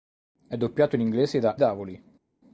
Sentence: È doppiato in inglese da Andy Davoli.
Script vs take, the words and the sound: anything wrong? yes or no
yes